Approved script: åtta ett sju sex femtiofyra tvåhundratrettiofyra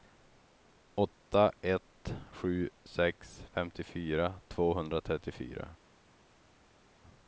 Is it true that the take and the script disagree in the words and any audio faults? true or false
false